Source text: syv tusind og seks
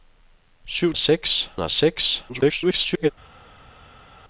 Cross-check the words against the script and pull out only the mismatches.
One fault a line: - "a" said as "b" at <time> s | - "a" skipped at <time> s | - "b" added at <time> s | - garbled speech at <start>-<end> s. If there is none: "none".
- "tusind" said as "seks" at 1.0 s
- garbled speech at 2.3-3.1 s